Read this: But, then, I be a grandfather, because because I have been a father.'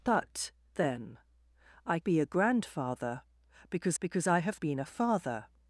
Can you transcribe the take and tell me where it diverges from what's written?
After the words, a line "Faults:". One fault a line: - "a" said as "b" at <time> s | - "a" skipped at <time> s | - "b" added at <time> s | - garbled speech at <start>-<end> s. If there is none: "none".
But, then, I be a grandfather, because because I have been a father.'
Faults:
none